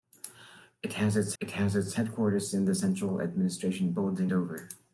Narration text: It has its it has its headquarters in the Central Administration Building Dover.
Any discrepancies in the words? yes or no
no